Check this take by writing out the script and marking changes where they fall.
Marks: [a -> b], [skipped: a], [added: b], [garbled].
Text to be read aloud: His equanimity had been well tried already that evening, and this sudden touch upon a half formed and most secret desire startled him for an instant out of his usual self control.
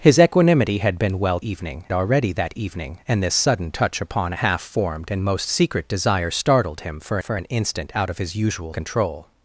His equanimity had been well [tried -> evening] already that evening, and this sudden touch upon a half formed and most secret desire startled him for [added: for] an instant out of his usual [skipped: self] control.